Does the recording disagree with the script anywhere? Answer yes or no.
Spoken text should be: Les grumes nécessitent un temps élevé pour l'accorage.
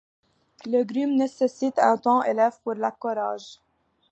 no